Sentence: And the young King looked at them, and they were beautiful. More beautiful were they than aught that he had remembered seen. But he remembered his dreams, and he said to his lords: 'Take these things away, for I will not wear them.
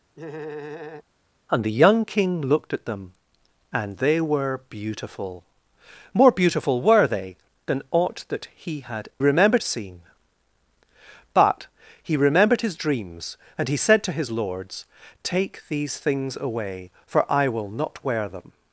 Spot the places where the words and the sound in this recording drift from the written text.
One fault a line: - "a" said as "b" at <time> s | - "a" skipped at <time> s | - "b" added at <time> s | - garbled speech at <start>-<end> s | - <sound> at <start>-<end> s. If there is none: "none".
- laugh at 0.1-1.0 s